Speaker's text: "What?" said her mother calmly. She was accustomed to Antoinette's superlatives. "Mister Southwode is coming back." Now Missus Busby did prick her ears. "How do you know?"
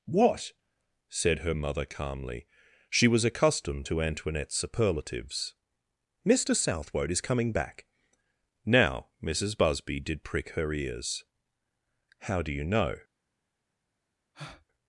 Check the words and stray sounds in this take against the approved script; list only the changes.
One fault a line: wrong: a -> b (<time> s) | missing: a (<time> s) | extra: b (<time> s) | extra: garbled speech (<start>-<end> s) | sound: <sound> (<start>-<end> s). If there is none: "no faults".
sound: breath (14.3-14.7 s)